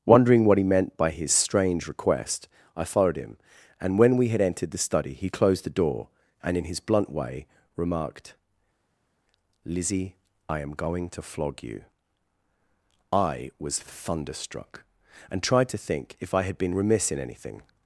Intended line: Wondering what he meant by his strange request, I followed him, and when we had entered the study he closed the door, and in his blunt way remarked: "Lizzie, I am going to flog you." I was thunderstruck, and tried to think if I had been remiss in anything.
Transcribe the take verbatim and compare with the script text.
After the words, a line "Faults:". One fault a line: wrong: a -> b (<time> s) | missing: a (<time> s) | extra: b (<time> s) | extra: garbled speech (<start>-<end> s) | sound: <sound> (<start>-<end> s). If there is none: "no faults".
Wondering what he meant by his strange request, I followed him, and when we had entered the study he closed the door, and in his blunt way remarked: "Lizzie, I am going to flog you." I was thunderstruck, and tried to think if I had been remiss in anything.
Faults:
no faults